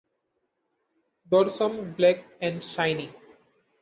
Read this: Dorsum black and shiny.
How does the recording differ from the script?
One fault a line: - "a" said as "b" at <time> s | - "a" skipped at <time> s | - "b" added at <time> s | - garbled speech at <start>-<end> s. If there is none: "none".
none